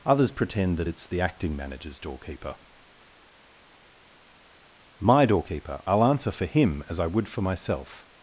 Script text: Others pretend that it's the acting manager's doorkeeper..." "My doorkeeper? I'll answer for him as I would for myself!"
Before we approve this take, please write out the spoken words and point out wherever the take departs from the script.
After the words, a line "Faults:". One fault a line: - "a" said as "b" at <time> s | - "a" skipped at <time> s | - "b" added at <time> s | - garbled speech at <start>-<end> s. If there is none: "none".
Others pretend that it's the acting manager's doorkeeper..." "My doorkeeper? I'll answer for him as I would for myself!"
Faults:
none